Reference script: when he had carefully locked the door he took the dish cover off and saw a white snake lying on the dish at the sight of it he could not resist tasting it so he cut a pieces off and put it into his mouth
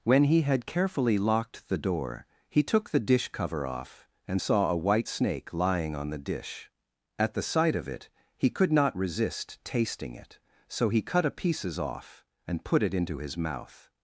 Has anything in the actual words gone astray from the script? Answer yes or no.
no